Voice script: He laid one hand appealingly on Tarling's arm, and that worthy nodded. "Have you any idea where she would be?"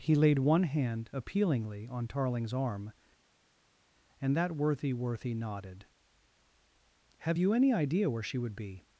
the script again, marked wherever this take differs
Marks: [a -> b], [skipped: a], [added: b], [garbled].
He laid one hand appealingly on Tarling's arm, and that worthy [added: worthy] nodded. "Have you any idea where she would be?"